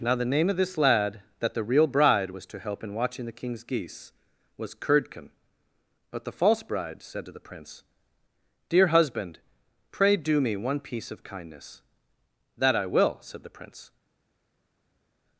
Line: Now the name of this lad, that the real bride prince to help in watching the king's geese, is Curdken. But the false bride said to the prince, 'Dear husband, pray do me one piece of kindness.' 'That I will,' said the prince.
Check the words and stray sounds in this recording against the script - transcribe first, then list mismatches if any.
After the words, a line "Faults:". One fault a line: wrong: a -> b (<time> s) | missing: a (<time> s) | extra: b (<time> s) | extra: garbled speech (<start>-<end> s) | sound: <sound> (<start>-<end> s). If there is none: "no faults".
Now the name of this lad, that the real bride was to help in watching the king's geese, was Curdken. But the false bride said to the prince, 'Dear husband, pray do me one piece of kindness.' 'That I will,' said the prince.
Faults:
wrong: prince -> was (2.3 s)
wrong: is -> was (4.6 s)